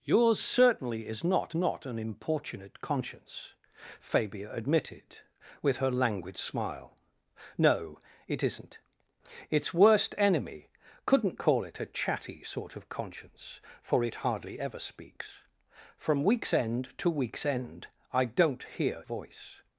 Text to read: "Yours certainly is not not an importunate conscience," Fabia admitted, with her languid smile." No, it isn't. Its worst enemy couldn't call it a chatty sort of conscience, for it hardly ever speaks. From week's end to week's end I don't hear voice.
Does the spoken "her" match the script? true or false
true